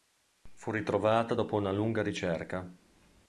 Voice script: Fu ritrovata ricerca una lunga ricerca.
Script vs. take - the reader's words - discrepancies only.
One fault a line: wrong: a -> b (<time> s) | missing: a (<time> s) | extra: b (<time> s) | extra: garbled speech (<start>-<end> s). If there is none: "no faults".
wrong: ricerca -> dopo (1.3 s)